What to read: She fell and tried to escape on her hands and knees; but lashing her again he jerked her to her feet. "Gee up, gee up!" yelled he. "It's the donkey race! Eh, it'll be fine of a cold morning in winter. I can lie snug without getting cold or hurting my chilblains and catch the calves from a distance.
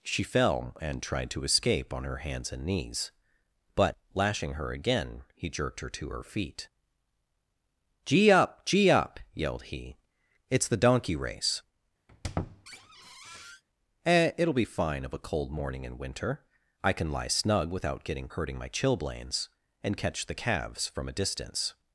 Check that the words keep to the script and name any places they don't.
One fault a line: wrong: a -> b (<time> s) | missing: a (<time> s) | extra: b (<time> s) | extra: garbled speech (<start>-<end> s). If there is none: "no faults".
missing: cold or (18.3 s)